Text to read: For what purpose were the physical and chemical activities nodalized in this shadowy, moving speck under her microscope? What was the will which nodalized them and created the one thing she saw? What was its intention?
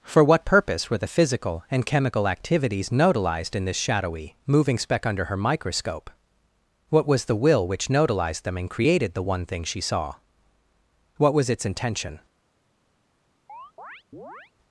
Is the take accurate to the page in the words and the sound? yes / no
no